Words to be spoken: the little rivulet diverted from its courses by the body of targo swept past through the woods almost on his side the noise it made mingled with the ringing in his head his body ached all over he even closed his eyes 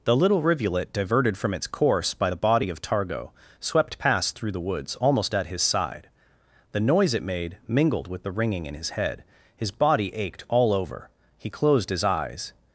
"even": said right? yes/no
no